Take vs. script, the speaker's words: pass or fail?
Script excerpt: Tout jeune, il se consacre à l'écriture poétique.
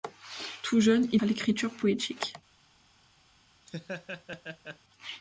fail